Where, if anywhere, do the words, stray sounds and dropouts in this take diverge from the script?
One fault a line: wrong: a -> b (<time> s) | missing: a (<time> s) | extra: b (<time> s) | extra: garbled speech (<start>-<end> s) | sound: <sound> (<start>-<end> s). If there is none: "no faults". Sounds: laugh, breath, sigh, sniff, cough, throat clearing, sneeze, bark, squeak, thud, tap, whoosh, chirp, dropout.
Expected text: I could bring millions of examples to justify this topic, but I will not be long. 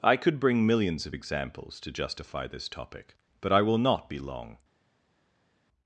no faults